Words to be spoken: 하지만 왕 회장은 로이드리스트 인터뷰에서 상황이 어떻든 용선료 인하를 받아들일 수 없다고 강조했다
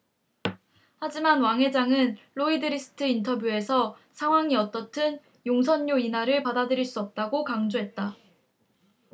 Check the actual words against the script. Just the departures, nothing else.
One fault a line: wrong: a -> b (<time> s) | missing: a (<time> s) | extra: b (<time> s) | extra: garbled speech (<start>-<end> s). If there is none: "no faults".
no faults